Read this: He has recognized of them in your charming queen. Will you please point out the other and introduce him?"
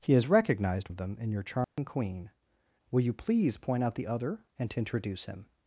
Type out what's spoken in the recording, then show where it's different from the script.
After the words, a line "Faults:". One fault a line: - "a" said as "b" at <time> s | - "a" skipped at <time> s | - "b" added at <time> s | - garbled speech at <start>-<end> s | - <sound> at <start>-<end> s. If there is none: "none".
He has recognized of them in your charming queen. Will you please point out the other and introduce him?"
Faults:
- dropout at 1.6-1.8 s